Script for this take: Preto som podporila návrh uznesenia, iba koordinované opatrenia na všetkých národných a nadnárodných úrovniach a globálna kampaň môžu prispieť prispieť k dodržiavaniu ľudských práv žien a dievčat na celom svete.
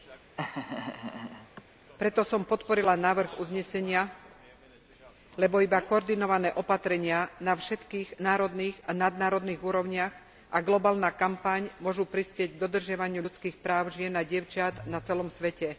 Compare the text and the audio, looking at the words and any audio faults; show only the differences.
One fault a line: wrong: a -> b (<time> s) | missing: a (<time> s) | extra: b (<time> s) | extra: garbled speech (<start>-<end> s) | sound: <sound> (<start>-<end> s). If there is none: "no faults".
sound: laugh (0.4-1.6 s)
extra: lebo (5.3 s)
missing: prispieť (12.5 s)